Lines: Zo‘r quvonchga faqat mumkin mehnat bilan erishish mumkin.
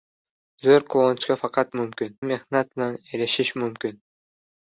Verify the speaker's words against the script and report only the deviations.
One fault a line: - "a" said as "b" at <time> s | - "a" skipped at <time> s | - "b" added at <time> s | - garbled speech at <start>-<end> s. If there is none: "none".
none